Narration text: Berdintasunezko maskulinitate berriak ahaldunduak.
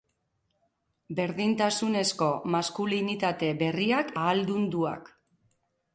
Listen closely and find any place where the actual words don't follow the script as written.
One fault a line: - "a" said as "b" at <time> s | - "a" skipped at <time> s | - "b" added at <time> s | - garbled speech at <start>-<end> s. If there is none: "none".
none